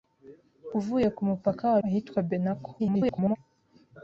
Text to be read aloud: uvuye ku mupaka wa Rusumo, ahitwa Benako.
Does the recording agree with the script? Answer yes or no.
no